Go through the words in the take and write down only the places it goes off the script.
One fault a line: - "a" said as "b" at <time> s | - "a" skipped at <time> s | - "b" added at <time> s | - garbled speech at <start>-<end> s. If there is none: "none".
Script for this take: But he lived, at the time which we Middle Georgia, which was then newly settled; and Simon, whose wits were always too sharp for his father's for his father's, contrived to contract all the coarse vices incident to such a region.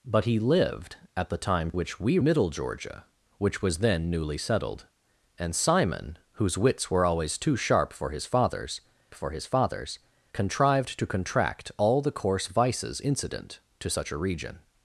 none